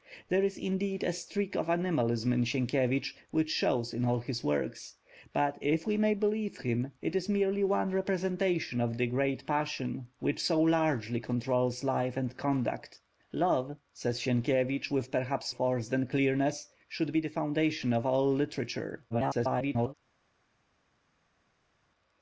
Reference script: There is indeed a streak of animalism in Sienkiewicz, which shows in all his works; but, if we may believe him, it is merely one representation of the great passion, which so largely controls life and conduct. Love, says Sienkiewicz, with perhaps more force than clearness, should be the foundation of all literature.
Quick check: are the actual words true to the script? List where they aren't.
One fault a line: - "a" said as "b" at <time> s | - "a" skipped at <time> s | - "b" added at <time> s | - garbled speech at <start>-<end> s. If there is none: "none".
- "more" skipped at 15.5 s
- garbled speech at 19.1-19.9 s